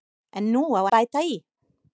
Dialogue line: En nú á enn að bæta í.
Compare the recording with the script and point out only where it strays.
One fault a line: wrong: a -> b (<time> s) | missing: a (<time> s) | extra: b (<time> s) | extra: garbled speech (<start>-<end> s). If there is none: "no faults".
missing: enn (0.8 s)